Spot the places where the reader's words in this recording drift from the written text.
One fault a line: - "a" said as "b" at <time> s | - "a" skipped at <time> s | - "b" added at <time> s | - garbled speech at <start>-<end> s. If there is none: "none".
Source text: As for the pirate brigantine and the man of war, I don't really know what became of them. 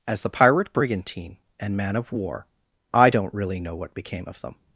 - "for" skipped at 0.2 s
- "the" skipped at 1.8 s